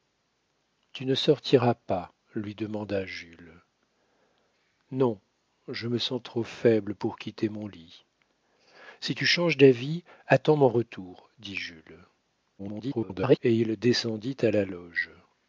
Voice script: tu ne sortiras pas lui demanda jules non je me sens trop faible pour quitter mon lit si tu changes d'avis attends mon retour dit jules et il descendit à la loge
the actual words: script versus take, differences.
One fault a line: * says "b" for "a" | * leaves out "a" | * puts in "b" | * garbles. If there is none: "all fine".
* garbles